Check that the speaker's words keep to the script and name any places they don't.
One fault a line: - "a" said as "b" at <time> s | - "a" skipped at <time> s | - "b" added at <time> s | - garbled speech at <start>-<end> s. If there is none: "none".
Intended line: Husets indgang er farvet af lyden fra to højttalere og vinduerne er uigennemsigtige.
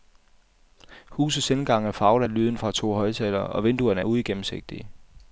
none